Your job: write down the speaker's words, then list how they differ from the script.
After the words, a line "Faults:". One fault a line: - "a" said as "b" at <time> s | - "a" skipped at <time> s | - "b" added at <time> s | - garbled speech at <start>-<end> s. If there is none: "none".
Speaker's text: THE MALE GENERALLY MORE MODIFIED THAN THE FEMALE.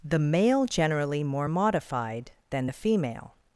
THE MALE GENERALLY MORE MODIFIED THAN THE FEMALE.
Faults:
none